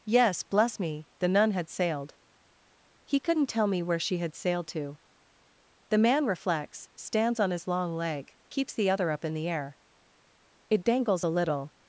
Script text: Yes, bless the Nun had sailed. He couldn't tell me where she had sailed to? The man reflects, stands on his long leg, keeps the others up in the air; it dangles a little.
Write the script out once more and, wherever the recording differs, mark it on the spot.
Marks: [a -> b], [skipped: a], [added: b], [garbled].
Yes, bless [added: me] the Nun had sailed. He couldn't tell me where she had sailed to? The man reflects, stands on his long leg, keeps the [others -> other] up in the air; it dangles a little.